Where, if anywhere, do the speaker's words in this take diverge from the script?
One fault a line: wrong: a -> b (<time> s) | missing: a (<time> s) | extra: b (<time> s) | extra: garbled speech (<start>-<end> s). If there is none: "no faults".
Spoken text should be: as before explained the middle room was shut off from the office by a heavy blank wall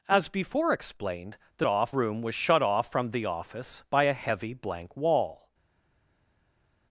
wrong: middle -> off (1.7 s)